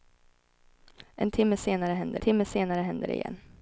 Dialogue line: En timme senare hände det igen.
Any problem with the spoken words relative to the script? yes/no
yes